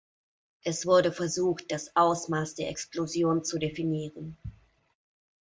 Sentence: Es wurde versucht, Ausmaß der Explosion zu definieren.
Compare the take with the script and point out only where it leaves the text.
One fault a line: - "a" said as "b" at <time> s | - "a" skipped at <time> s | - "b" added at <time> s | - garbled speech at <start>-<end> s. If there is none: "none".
- "das" added at 1.7 s